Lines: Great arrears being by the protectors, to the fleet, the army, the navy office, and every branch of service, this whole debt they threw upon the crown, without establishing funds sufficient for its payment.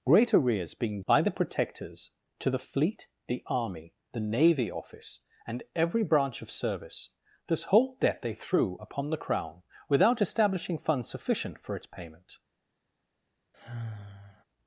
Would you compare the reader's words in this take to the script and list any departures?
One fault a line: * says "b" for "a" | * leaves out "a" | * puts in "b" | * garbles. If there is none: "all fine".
all fine